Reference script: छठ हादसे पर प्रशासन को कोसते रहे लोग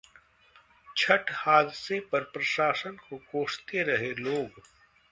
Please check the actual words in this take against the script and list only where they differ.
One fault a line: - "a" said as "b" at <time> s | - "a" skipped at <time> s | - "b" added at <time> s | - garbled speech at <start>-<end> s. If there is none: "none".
none